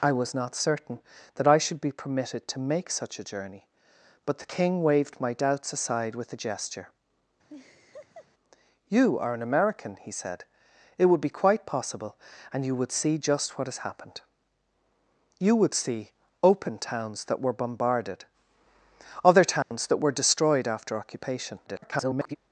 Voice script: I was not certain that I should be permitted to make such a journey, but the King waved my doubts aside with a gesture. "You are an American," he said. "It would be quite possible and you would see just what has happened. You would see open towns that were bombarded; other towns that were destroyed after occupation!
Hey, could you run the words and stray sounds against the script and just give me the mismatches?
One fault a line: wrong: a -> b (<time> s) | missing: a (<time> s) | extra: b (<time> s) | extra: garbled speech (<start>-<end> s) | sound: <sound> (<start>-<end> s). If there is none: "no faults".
sound: laugh (7.5-8.3 s)
sound: dropout (19.6-19.7 s)
extra: garbled speech (21.7-22.4 s)